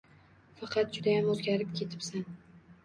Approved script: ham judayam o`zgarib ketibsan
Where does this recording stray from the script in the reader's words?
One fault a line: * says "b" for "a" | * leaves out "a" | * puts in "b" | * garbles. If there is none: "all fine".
* says "faqat" for "ham"